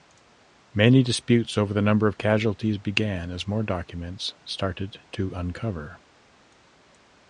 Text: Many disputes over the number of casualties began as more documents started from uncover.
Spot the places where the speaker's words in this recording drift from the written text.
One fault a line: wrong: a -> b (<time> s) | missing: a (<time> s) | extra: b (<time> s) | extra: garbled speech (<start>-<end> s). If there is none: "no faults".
wrong: from -> to (5.1 s)